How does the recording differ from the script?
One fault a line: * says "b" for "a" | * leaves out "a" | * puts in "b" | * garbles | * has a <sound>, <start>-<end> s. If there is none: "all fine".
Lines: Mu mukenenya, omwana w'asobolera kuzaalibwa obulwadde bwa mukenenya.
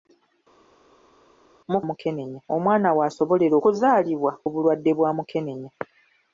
all fine